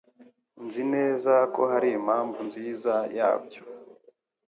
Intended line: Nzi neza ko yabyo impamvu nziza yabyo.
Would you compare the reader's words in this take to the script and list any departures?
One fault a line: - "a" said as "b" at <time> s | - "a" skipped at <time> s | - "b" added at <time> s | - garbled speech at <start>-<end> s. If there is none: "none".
- "yabyo" said as "hari" at 1.7 s